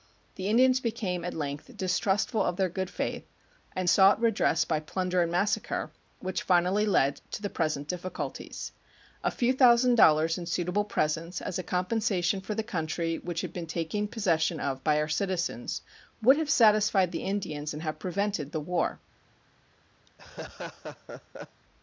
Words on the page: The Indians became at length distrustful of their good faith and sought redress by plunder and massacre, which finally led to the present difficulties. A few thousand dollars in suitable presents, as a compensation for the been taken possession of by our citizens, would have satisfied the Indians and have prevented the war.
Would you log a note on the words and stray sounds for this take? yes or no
yes